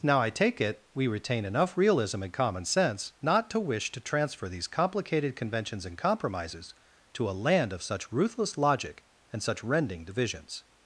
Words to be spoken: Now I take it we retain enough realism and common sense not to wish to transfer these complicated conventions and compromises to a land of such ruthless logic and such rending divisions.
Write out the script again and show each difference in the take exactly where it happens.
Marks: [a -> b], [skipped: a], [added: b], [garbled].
Now I take it we retain enough realism and common sense not to wish to transfer these complicated conventions and compromises to a land of such ruthless logic and such rending divisions.